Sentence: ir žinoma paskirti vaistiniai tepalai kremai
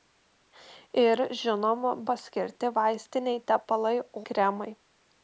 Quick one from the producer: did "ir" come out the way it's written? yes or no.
yes